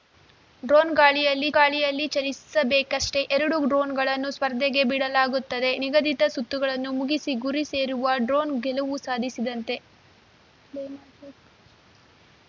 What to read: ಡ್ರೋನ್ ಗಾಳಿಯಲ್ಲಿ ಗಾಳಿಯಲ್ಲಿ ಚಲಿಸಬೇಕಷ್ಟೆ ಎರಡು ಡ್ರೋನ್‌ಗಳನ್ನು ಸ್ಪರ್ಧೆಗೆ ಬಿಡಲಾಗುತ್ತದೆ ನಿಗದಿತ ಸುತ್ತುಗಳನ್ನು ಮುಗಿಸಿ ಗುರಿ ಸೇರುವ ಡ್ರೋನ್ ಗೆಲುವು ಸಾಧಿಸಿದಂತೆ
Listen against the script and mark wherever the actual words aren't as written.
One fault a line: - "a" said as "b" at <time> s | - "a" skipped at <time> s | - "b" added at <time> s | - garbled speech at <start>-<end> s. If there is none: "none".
none